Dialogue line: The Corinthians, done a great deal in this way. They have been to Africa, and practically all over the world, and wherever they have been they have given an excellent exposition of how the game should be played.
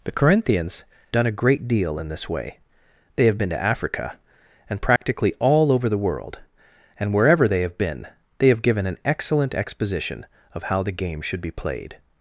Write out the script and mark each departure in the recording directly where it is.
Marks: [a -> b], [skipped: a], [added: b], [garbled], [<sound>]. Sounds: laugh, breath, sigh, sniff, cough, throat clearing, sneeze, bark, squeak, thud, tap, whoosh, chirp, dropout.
The Corinthians, done a great deal in this way. They have been to Africa, and practically [dropout] all over the world, and wherever they have been they have given an excellent exposition of how the game should be played.